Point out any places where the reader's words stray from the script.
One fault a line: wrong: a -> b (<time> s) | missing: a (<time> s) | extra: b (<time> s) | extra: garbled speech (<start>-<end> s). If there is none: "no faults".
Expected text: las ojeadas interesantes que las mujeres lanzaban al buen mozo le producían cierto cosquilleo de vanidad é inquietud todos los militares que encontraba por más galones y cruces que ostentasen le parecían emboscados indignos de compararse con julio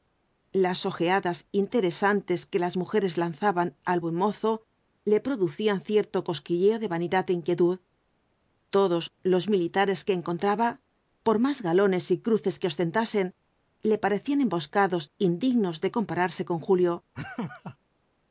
no faults